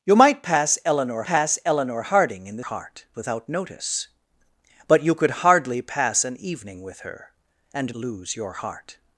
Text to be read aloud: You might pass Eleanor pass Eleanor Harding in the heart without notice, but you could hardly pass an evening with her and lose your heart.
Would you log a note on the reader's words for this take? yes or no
no